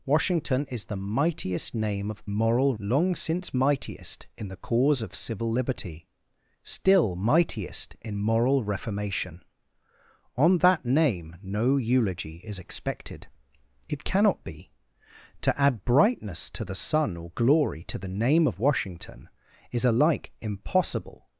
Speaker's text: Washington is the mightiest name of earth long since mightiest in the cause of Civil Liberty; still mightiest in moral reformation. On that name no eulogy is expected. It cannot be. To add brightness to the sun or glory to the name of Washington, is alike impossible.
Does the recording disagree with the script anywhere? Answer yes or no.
yes